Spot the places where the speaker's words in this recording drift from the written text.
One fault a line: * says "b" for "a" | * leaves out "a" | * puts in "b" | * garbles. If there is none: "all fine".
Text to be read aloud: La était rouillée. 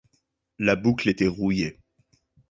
* puts in "boucle"